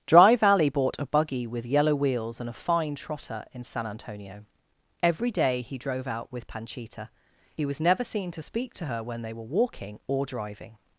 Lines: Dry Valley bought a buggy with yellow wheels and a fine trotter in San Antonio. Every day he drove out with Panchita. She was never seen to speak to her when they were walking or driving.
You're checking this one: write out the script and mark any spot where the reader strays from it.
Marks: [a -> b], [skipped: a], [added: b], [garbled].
Dry Valley bought a buggy with yellow wheels and a fine trotter in San Antonio. Every day he drove out with Panchita. [She -> He] was never seen to speak to her when they were walking or driving.